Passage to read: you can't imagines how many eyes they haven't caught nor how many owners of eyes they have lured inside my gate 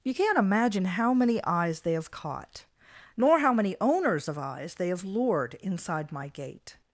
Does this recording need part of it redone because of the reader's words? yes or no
yes